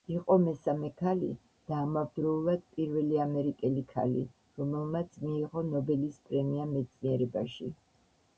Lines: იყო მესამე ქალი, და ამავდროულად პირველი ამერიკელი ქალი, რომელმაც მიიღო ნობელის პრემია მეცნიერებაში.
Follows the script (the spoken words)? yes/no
yes